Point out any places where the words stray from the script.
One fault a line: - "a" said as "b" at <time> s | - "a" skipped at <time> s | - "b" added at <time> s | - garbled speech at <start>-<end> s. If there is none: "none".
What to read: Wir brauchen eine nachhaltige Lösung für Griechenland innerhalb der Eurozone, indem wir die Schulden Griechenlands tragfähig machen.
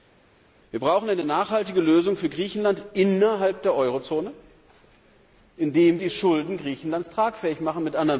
- "wir" skipped at 6.0 s